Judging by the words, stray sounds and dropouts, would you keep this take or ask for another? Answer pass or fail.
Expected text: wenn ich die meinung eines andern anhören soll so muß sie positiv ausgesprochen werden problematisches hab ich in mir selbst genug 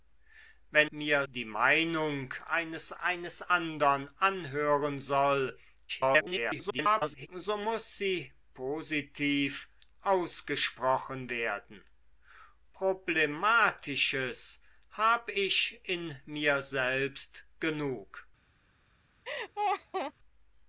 fail